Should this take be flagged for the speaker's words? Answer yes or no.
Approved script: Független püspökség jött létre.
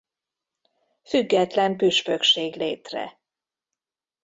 yes